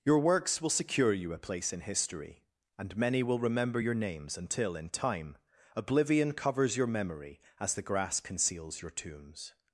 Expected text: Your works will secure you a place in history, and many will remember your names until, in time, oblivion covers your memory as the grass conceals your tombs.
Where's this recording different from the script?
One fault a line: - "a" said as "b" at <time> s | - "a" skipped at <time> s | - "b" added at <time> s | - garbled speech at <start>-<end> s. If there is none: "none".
none